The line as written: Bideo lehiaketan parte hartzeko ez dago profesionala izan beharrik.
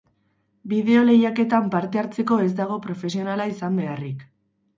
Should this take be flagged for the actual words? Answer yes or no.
no